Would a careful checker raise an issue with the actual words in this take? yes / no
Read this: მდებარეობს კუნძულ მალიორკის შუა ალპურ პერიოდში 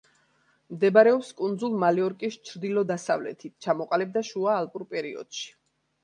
yes